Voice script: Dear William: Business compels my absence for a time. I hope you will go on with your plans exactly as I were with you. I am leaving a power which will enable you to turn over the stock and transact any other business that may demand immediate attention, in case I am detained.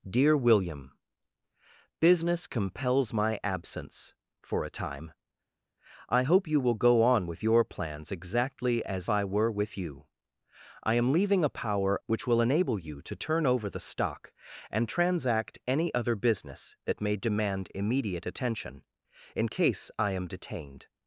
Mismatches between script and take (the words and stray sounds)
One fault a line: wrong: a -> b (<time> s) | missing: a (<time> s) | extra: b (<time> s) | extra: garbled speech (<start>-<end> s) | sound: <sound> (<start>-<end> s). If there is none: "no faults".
no faults